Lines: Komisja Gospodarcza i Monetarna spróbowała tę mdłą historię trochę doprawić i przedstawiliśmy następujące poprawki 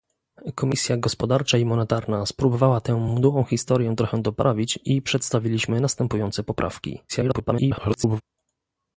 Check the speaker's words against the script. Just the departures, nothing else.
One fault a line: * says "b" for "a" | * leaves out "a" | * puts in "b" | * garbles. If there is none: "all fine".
* garbles